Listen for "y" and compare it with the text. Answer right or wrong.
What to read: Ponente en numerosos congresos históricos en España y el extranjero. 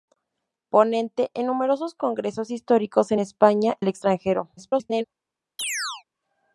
wrong